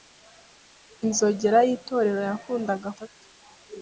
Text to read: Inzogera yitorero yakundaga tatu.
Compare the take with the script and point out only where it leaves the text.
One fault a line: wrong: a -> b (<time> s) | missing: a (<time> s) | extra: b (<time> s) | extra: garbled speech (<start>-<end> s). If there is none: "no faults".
no faults